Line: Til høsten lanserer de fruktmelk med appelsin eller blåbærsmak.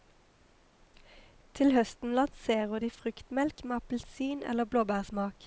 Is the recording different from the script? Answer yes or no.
no